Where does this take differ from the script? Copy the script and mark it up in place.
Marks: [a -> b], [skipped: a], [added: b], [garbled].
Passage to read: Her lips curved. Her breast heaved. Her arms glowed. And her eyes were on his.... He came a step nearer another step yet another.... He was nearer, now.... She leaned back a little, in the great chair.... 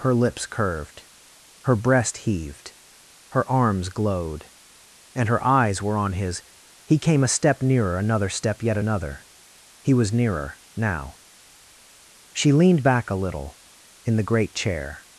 Her lips curved. Her breast heaved. Her arms glowed. And her eyes were on his.... He came a step nearer another step yet another.... He was nearer, now.... She leaned back a little, in the great chair....